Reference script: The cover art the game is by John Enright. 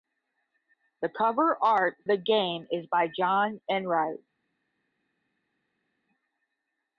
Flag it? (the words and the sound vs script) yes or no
no